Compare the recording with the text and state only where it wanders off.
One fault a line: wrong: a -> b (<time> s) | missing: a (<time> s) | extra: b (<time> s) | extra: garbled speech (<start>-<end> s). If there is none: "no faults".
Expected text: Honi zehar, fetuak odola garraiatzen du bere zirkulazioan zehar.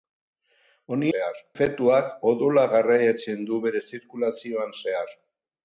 no faults